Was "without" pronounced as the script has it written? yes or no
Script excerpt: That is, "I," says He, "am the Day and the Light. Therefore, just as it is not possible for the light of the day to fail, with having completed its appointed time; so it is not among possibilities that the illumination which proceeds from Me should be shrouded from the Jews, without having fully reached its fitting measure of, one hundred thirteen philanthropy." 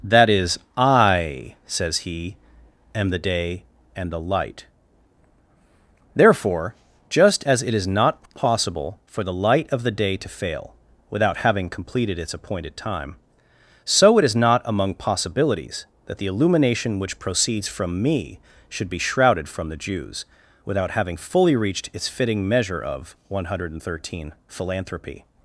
yes